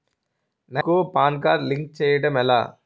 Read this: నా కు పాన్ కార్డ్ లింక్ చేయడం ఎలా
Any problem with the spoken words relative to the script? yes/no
no